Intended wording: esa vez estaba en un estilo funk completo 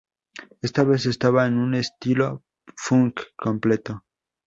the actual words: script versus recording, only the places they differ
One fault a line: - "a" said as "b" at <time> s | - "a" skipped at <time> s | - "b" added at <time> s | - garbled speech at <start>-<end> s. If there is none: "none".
- "esa" said as "esta" at 0.6 s